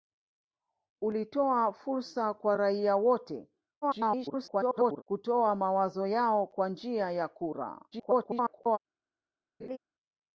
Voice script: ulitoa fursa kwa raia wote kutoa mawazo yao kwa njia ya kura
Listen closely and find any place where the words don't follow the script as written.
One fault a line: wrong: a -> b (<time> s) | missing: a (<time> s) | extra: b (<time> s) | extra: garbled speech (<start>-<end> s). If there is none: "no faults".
extra: garbled speech (3.8-5.0 s)
extra: garbled speech (7.9-8.8 s)